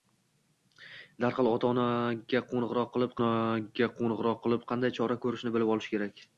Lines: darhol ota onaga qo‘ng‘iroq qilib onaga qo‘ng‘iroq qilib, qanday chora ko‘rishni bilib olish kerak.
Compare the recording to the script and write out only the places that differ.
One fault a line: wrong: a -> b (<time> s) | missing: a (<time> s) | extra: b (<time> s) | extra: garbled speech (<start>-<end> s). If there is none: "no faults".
no faults